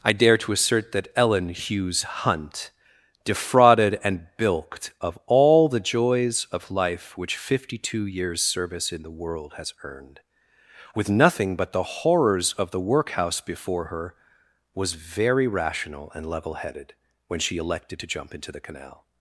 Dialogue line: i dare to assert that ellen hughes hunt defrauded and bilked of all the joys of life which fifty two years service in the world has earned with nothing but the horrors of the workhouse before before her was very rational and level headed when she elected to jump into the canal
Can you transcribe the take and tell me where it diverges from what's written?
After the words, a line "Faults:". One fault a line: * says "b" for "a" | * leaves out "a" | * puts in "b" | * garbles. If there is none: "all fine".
i dare to assert that ellen hughes hunt defrauded and bilked of all the joys of life which fifty two years service in the world has earned with nothing but the horrors of the workhouse before her was very rational and level headed when she elected to jump into the canal
Faults:
* leaves out "before"